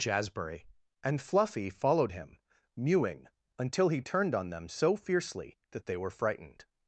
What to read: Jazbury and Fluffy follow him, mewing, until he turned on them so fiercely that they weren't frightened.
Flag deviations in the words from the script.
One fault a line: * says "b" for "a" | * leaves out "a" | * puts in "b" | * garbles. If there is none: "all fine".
* says "followed" for "follow"
* says "were" for "weren't"